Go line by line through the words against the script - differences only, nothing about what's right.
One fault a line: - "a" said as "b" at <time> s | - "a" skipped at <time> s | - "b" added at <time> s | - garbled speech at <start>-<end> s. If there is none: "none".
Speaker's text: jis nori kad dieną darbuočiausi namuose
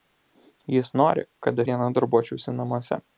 none